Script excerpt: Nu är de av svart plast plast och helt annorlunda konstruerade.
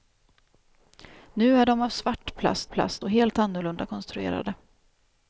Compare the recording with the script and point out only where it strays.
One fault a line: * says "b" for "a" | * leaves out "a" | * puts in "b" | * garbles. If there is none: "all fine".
all fine